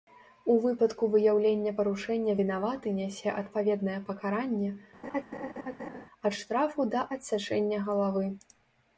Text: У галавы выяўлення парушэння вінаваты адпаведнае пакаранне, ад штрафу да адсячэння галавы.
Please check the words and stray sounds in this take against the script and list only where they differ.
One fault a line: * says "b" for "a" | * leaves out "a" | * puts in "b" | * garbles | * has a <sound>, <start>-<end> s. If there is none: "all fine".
* says "выпадку" for "галавы"
* puts in "нясе"
* has a laugh, 5.0-6.1 s